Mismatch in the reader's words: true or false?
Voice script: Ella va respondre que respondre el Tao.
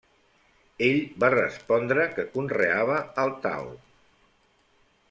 true